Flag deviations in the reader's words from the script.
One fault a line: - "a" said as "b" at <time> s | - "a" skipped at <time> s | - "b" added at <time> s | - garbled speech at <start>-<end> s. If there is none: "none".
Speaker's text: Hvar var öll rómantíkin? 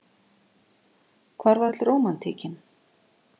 none